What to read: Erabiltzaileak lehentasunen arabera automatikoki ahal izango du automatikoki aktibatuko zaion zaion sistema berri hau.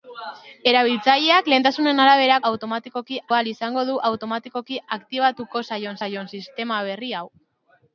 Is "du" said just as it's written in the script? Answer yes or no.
yes